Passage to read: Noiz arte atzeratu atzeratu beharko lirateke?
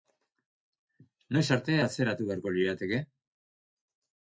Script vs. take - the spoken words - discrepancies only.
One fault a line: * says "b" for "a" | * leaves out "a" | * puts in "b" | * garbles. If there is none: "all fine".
* leaves out "atzeratu"